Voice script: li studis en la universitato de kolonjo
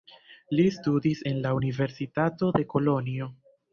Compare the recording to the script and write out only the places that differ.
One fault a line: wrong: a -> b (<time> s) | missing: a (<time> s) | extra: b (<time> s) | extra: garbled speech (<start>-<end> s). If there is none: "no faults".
no faults